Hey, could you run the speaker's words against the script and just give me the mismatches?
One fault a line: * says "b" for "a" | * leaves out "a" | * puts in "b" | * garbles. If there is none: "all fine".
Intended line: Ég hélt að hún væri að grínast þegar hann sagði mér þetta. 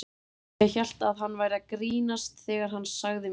* says "hann" for "hún"